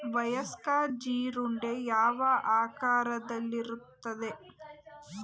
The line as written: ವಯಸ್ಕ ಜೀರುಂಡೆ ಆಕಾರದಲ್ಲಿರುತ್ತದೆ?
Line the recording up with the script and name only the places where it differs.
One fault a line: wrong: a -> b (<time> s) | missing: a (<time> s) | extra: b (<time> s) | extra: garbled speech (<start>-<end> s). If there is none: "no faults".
extra: ಯಾವ (1.9 s)